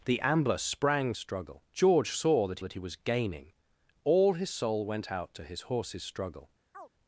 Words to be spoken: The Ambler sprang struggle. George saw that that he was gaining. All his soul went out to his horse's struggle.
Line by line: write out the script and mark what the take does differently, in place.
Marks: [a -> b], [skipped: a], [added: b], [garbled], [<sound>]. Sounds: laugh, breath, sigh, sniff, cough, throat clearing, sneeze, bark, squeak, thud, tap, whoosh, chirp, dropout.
The Ambler sprang struggle. George saw that that he was gaining. All his soul went out to his horse's struggle. [chirp]